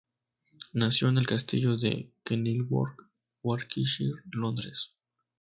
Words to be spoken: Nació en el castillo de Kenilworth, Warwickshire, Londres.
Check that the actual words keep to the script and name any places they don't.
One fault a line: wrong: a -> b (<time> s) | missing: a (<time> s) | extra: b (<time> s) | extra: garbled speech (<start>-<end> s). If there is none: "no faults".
no faults